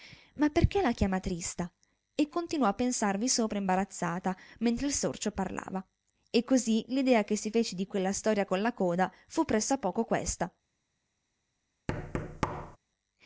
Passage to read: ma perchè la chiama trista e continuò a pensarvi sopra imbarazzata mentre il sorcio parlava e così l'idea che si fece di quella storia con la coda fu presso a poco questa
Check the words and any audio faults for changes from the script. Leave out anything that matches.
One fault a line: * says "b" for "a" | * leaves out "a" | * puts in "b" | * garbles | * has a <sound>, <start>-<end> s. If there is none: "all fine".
* has a thud, 11.9-12.8 s